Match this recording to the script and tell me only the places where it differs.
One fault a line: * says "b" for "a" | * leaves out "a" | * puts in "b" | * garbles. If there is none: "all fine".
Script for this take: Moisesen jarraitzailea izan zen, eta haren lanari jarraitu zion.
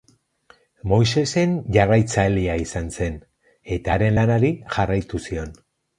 all fine